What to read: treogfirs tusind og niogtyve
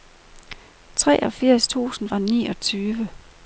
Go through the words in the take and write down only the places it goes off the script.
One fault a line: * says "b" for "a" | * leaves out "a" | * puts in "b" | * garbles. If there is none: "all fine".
all fine